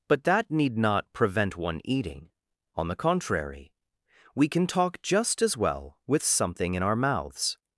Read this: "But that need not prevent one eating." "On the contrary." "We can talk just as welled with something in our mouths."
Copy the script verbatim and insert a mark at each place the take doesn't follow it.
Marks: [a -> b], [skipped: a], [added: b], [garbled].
"But that need not prevent one eating." "On the contrary." "We can talk just as [welled -> well] with something in our mouths."